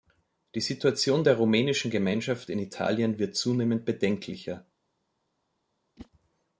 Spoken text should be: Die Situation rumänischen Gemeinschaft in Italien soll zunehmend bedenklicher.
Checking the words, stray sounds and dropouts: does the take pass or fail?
fail